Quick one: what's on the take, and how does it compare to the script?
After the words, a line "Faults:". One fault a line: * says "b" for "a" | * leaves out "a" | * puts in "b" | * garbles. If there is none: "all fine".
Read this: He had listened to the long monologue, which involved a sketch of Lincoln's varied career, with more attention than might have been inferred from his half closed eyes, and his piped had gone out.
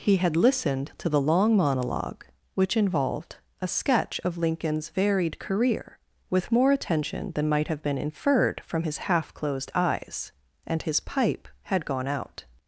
He had listened to the long monologue, which involved a sketch of Lincoln's varied career, with more attention than might have been inferred from his half closed eyes, and his pipe had gone out.
Faults:
* says "pipe" for "piped"